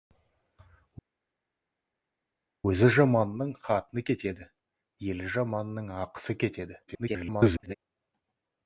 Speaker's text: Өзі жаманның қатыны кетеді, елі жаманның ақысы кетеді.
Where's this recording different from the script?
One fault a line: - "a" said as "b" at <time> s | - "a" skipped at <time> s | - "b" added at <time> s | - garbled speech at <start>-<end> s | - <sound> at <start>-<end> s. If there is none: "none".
- garbled speech at 6.9-7.8 s